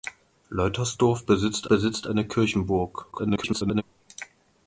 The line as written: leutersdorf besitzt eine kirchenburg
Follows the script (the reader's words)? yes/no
no